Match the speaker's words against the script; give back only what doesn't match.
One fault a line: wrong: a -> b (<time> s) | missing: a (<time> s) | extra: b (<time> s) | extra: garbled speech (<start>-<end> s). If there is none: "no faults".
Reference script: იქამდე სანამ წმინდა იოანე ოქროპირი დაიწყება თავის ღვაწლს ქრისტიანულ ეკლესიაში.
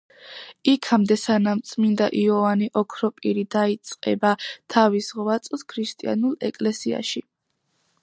no faults